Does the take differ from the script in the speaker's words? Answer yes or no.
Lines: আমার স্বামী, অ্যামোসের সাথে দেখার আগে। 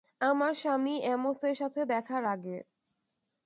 no